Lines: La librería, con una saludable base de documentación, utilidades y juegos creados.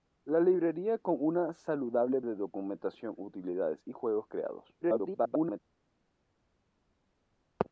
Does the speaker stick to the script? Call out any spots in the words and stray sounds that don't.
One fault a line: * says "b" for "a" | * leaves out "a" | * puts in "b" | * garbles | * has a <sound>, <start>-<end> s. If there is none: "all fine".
* leaves out "base"
* garbles